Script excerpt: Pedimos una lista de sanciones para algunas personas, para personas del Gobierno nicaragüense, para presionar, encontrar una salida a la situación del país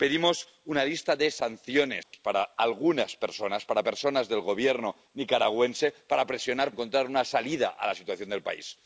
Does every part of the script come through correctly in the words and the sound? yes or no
no